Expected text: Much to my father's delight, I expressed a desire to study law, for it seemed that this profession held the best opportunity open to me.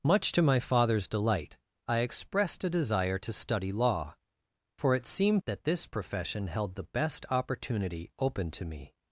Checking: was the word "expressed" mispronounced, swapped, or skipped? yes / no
no